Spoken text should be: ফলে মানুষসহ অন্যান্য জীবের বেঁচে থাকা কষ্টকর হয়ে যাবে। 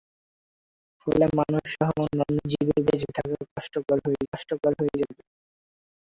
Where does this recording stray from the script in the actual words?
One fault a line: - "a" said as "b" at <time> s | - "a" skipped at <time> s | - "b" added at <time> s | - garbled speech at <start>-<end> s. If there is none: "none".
- "কষ্টকর হয়ে" added at 4.3 s